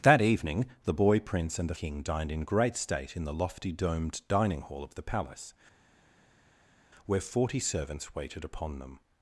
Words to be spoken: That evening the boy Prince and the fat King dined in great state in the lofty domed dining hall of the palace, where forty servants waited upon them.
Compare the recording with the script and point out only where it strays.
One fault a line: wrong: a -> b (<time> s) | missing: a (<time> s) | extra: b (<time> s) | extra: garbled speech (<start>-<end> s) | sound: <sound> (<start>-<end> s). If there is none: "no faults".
missing: fat (1.8 s)